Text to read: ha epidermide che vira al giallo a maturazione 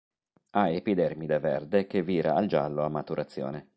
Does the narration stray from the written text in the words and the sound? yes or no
yes